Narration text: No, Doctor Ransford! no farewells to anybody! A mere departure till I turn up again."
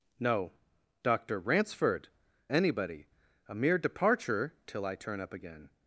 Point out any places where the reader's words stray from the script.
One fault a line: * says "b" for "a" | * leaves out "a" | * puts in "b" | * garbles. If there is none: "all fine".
* leaves out "no farewells to"